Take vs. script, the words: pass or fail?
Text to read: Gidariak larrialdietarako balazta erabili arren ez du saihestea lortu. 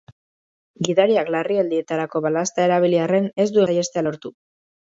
pass